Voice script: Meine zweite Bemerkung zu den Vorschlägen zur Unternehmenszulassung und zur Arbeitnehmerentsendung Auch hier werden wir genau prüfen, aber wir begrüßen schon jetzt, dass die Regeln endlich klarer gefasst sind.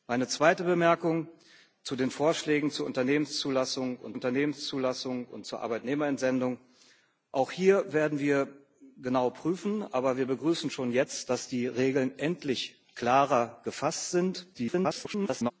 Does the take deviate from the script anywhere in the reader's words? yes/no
yes